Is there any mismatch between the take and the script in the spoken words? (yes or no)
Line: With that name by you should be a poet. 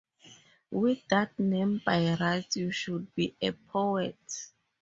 yes